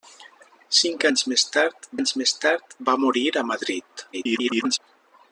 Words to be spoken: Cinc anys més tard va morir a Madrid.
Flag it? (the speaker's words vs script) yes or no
yes